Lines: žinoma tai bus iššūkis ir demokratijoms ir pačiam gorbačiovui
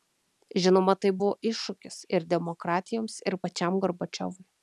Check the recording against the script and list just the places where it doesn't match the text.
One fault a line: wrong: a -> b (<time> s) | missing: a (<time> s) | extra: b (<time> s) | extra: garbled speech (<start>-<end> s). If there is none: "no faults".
wrong: bus -> buvo (1.2 s)